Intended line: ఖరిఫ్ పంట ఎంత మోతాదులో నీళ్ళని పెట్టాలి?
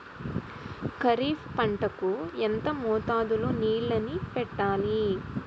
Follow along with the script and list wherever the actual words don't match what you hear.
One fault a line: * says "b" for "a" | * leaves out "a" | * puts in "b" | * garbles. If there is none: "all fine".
* puts in "కు"